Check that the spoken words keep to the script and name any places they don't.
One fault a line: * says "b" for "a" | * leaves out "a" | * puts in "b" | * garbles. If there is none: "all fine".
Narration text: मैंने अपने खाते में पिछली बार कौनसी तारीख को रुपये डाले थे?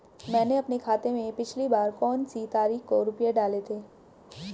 all fine